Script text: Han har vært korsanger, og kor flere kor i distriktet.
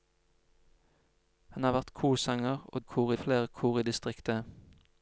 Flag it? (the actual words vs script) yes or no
no